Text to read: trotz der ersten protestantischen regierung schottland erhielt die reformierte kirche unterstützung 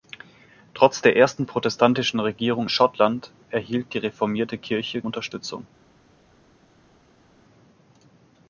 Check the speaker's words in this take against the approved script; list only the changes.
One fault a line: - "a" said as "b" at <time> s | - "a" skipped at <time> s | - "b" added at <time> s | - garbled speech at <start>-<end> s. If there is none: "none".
none